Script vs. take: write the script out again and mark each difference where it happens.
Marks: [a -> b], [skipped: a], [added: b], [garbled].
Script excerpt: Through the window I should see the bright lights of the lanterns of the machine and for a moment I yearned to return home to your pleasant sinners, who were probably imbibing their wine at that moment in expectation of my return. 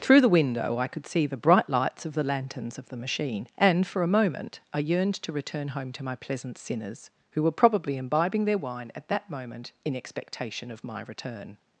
Through the window I [should -> could] see the bright lights of the lanterns of the machine and for a moment I yearned to return home to [your -> my] pleasant sinners, who were probably imbibing their wine at that moment in expectation of my return.